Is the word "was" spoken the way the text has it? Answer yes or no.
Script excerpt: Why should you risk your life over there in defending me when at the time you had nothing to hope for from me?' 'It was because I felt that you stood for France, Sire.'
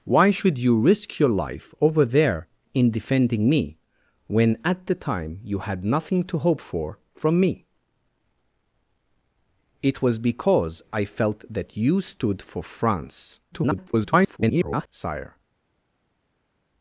yes